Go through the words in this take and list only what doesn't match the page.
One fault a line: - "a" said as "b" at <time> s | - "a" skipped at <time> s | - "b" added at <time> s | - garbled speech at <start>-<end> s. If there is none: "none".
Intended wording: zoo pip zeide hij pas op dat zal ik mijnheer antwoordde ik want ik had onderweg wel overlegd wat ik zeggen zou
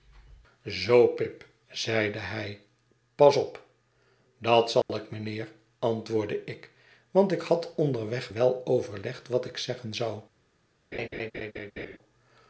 none